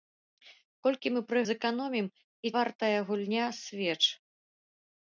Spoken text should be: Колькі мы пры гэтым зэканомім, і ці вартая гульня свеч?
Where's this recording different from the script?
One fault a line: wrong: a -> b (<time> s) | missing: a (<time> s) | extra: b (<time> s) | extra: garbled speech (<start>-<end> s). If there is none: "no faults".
missing: гэтым (1.4 s)
missing: ці (2.5 s)